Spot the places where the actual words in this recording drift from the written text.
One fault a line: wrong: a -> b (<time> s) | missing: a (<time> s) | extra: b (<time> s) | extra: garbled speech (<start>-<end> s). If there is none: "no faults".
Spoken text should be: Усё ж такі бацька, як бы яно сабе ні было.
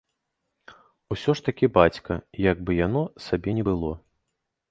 no faults